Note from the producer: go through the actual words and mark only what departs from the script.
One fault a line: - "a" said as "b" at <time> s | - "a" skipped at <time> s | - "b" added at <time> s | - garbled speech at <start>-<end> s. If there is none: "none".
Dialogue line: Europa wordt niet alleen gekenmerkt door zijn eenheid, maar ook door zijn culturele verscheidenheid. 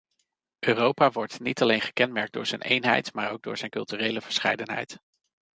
none